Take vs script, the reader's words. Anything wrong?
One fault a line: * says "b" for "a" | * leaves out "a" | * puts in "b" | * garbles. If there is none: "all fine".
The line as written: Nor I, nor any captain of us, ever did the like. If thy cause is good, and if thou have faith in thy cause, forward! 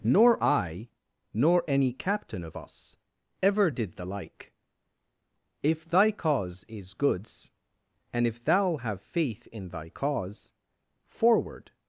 * says "goods" for "good"